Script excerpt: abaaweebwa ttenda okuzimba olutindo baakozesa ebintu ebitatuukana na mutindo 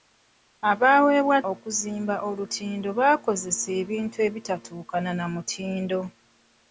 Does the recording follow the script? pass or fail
fail